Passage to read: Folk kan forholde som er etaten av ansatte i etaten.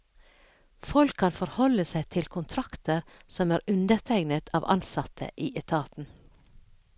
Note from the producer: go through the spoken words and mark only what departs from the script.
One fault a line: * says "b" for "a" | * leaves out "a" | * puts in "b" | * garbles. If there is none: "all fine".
* puts in "seg til kontrakter"
* says "undertegnet" for "etaten"